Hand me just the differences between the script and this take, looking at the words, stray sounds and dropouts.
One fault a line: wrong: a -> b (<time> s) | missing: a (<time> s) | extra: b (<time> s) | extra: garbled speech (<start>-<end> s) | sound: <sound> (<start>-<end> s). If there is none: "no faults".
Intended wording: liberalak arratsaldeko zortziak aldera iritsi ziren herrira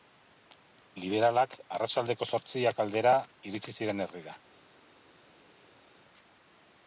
no faults